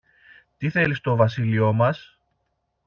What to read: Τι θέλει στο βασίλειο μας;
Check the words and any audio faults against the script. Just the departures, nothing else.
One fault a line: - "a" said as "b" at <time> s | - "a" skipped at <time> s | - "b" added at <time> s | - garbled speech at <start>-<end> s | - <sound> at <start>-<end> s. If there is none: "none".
none